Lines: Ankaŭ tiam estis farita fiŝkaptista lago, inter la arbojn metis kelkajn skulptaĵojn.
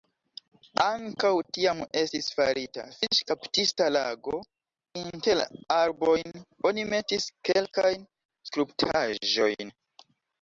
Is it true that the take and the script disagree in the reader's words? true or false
true